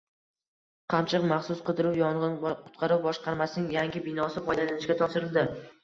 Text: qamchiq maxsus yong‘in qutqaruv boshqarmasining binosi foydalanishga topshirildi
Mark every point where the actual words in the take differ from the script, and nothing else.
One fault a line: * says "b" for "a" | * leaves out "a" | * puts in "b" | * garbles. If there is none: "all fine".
* puts in "qidiruv"
* puts in "yangi"